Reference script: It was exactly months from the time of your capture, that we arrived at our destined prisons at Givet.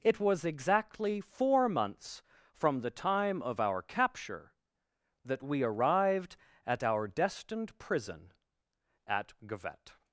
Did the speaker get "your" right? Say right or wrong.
wrong